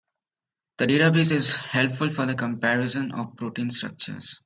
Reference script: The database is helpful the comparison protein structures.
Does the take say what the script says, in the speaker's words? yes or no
no